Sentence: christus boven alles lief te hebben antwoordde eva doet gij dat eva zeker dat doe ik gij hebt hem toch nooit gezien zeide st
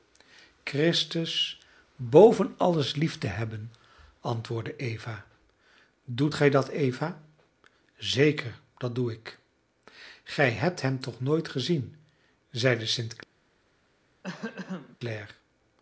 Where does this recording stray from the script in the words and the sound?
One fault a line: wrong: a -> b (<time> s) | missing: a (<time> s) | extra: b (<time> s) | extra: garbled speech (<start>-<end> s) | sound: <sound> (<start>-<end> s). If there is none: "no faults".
sound: throat clearing (14.2-15.0 s)